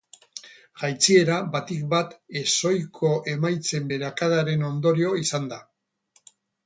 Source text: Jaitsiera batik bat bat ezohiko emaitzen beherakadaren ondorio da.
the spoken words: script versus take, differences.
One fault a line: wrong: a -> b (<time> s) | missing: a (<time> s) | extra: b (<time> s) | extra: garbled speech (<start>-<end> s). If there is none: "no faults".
missing: bat (2.1 s)
extra: izan (5.3 s)